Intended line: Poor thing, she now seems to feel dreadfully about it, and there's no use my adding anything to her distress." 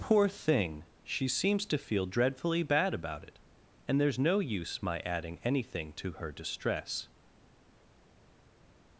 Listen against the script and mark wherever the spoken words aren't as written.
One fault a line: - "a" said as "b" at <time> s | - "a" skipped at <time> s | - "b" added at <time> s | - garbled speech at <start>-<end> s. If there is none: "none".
- "now" skipped at 1.3 s
- "bad" added at 2.6 s